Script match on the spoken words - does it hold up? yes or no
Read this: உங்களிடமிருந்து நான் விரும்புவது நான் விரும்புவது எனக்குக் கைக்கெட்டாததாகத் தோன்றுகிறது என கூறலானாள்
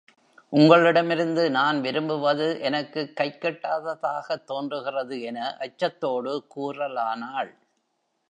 no